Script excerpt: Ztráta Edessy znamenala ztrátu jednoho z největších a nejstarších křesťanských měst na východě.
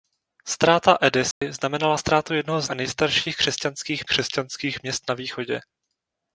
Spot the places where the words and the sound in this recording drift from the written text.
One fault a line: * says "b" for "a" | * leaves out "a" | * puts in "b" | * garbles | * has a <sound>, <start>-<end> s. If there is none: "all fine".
* has a dropout, 1.3-1.4 s
* leaves out "největších"
* puts in "křesťanských"